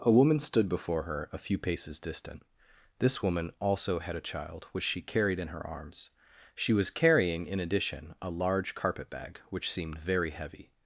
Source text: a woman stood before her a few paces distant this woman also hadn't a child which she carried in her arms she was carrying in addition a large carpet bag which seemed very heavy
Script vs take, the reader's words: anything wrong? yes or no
yes